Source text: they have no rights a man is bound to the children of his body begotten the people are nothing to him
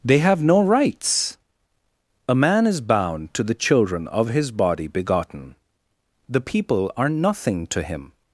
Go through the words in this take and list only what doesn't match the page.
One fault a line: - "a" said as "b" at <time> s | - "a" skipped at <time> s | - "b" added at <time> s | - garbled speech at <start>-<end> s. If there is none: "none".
none